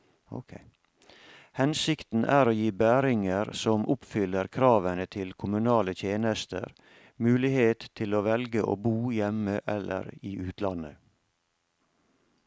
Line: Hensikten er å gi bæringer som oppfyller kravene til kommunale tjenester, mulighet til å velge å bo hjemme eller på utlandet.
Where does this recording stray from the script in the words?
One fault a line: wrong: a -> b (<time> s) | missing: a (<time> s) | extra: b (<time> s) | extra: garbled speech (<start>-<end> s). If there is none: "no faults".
wrong: på -> i (10.2 s)